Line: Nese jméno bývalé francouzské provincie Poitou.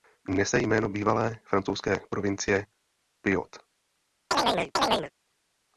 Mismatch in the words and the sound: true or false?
true